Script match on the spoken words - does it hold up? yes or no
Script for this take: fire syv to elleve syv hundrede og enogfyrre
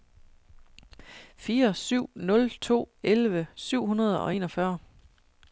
no